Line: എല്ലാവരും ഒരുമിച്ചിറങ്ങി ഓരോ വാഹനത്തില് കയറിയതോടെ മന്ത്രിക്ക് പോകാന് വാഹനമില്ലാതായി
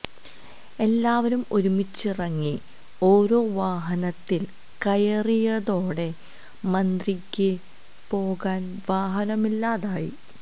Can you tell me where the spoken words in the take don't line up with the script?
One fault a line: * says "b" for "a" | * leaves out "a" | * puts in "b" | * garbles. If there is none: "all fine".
all fine